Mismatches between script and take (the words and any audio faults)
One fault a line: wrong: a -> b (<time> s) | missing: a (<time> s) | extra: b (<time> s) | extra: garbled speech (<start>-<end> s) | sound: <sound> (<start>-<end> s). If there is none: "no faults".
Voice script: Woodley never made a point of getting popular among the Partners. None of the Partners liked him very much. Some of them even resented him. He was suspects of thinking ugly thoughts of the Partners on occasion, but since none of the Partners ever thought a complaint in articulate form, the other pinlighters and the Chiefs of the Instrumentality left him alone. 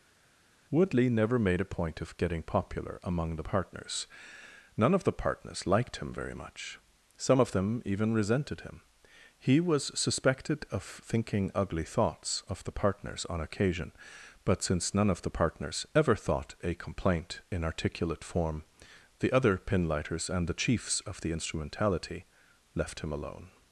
wrong: suspects -> suspected (10.0 s)